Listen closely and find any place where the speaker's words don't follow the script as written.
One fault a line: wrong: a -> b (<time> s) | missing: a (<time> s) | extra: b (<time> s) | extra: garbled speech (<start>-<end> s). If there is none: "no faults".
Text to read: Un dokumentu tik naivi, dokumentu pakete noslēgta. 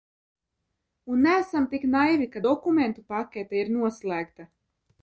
wrong: dokumentu -> neesam (1.3 s)
extra: ka (2.3 s)
extra: ir (3.6 s)